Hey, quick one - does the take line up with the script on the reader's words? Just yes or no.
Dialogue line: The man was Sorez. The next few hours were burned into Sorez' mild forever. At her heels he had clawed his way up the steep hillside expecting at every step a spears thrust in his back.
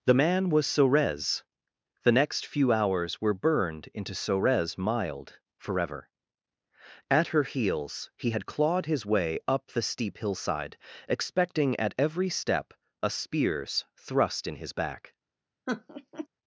yes